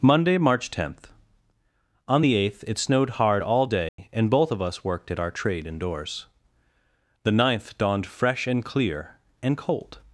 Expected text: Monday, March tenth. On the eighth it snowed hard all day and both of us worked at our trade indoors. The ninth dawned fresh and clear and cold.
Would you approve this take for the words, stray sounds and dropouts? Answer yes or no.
no